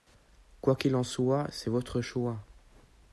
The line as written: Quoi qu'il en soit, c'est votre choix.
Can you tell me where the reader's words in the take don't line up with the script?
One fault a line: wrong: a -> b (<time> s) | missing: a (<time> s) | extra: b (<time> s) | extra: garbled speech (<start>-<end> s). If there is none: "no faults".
no faults